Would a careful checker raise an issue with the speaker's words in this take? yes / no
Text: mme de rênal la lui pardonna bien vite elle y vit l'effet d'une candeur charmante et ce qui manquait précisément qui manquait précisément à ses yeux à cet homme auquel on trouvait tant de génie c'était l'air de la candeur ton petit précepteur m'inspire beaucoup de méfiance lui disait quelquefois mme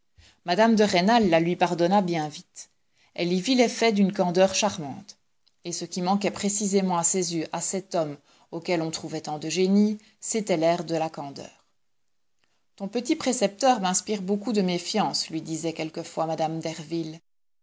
yes